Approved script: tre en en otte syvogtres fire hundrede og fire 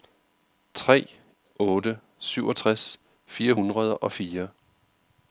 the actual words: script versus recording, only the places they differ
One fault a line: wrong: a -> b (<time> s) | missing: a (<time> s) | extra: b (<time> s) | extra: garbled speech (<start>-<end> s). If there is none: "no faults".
missing: en en (1.1 s)